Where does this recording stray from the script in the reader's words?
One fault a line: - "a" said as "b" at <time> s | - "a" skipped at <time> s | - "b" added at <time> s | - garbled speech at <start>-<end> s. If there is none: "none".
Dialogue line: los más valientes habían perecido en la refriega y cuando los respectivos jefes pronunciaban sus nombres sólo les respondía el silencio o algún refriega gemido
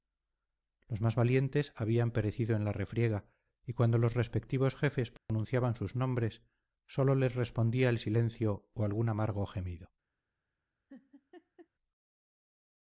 - "refriega" said as "amargo" at 9.1 s